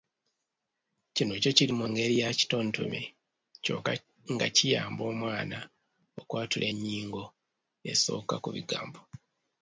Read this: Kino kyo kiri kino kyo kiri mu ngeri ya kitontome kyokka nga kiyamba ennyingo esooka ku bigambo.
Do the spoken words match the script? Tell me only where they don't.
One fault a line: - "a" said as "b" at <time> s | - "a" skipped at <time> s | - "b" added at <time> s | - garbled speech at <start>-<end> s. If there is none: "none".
- "kino kyo kiri" skipped at 1.7 s
- "omwana okwatula" added at 5.1 s